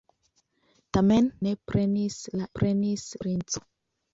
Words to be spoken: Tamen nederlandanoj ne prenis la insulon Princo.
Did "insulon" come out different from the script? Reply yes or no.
yes